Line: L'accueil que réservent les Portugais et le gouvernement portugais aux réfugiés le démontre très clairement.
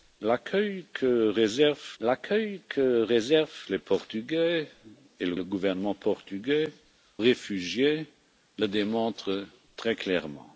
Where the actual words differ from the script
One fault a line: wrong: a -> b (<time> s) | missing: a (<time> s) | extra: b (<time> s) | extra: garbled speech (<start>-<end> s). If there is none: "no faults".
extra: l'accueil que réservent (2.0 s)
extra: le (5.3 s)
missing: aux (6.7 s)